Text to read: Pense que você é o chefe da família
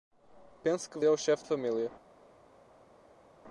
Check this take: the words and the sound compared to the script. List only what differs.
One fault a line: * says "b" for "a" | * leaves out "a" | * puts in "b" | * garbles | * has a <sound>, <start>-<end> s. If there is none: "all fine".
* leaves out "você"
* leaves out "da"